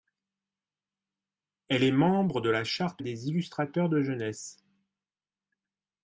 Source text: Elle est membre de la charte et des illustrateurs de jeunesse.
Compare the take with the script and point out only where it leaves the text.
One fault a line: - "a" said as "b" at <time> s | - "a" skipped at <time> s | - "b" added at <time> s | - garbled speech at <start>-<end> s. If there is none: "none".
none